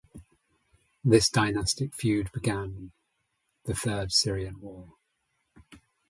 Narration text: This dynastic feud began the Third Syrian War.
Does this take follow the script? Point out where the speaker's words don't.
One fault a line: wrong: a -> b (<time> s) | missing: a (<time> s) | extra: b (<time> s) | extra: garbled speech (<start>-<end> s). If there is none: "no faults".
no faults